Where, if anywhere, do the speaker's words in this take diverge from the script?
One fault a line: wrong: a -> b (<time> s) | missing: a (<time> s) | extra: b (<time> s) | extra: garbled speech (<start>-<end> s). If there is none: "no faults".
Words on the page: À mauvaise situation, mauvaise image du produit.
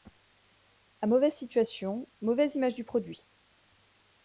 no faults